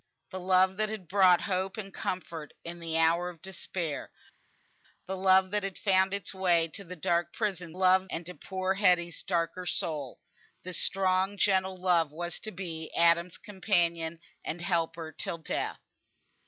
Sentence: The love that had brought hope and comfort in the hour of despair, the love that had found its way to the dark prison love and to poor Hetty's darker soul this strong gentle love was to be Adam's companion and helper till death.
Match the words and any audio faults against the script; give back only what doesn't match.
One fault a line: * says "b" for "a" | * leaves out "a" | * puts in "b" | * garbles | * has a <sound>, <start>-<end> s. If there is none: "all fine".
all fine